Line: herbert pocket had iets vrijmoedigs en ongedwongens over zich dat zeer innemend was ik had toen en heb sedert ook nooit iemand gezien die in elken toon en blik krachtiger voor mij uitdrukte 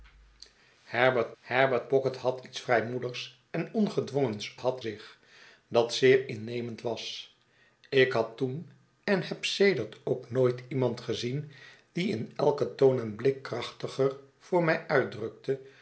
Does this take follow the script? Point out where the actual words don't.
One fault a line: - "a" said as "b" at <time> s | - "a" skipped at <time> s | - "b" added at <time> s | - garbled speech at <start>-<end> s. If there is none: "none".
- "herbert" added at 1.4 s
- "over" said as "had" at 4.6 s